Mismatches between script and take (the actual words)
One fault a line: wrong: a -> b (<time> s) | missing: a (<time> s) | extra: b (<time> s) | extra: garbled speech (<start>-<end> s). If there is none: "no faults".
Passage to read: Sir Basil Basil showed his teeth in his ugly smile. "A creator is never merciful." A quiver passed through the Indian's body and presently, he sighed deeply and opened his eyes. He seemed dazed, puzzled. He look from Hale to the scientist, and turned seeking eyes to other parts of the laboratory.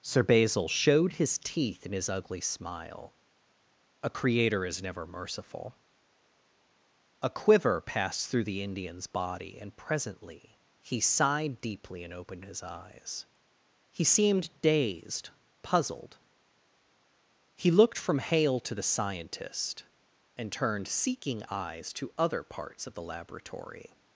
missing: Basil (0.7 s)
wrong: look -> looked (17.7 s)